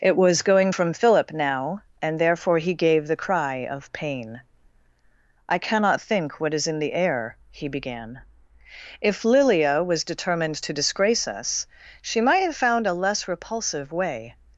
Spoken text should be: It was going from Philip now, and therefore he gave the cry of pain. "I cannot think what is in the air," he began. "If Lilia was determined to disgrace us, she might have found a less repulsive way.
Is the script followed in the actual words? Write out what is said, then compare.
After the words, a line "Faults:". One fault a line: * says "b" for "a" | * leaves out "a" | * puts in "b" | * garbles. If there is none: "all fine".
It was going from Philip now, and therefore he gave the cry of pain. "I cannot think what is in the air," he began. "If Lilia was determined to disgrace us, she might have found a less repulsive way.
Faults:
all fine